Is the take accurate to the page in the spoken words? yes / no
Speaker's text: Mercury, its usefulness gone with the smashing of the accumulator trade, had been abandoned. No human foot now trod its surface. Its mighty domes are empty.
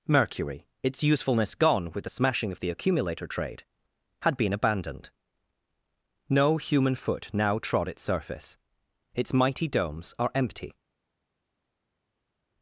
yes